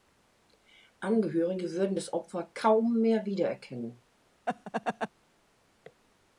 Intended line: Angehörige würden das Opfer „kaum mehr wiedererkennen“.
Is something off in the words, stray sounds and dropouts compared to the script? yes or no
yes